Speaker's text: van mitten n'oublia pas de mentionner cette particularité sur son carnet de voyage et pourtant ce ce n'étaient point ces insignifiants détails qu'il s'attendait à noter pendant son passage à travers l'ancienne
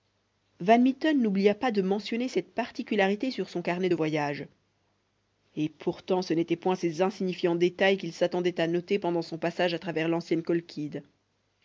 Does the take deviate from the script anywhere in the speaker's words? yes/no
yes